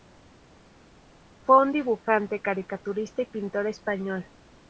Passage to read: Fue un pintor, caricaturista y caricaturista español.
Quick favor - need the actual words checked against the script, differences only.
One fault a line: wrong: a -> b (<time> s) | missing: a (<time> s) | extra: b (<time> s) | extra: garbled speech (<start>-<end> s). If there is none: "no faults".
wrong: pintor -> dibujante (1.7 s)
wrong: caricaturista -> pintor (3.2 s)